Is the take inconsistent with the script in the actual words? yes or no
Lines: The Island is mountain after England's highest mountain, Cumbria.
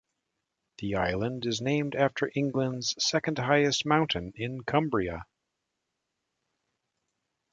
yes